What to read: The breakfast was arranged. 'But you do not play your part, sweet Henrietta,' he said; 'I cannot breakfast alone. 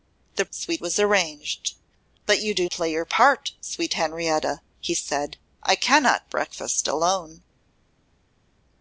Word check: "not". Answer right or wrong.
wrong